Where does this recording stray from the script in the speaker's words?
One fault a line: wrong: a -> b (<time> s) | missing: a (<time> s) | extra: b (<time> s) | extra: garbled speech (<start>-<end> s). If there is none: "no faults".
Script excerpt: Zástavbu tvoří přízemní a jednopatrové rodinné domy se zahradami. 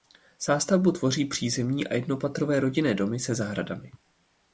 no faults